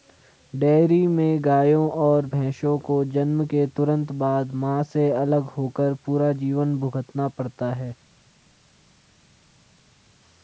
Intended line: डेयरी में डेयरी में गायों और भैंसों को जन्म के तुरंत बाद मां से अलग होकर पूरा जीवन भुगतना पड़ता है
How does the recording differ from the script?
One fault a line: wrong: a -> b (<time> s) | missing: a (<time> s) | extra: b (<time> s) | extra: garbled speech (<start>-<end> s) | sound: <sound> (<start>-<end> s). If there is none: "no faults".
missing: डेयरी में (1.4 s)